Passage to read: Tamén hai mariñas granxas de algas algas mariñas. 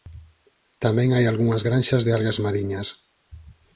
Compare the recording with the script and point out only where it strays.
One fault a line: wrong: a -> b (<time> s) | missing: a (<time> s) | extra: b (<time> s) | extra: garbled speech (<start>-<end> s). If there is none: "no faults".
wrong: mariñas -> algunhas (1.3 s)
missing: algas (2.4 s)